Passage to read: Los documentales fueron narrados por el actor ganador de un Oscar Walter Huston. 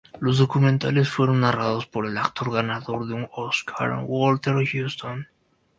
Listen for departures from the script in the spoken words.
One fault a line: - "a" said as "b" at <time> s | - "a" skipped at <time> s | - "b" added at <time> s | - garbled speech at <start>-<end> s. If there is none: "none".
none